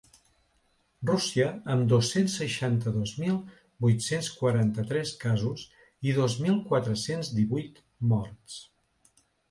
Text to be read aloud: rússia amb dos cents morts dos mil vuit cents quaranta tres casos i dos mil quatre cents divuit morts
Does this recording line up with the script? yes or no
no